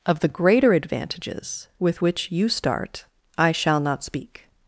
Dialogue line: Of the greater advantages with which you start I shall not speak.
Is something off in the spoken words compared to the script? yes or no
no